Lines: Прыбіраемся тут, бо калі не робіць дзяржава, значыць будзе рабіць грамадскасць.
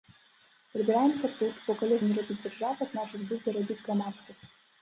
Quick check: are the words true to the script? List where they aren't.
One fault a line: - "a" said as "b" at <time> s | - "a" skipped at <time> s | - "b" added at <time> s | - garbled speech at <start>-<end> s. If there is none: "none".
none